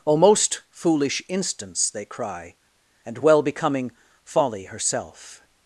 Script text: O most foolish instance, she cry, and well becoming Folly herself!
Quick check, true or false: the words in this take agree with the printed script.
false